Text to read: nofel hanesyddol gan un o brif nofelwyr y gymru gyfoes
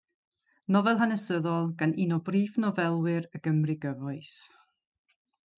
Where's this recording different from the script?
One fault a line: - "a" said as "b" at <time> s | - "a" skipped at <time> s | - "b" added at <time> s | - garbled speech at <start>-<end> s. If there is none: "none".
none